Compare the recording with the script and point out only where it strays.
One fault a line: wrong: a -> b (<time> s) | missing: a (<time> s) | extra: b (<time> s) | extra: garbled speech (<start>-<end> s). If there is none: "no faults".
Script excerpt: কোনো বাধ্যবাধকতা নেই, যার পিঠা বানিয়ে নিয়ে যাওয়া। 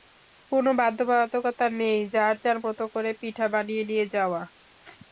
extra: যার মতো করে (2.4 s)